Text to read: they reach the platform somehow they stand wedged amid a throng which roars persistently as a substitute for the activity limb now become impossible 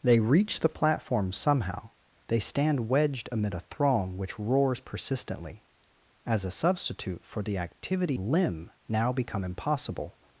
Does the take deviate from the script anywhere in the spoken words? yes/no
no